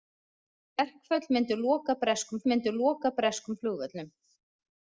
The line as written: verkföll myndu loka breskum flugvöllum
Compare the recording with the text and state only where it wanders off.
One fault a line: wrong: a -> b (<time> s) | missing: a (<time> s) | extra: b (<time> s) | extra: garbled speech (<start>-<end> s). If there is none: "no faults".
extra: myndu loka breskum (2.5 s)